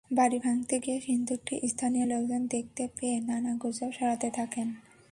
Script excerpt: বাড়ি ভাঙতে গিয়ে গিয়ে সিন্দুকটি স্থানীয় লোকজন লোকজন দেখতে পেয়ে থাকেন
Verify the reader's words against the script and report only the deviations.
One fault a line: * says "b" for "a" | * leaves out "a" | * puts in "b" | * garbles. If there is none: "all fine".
* leaves out "গিয়ে"
* leaves out "লোকজন"
* puts in "নানা গুজব ছড়াতে"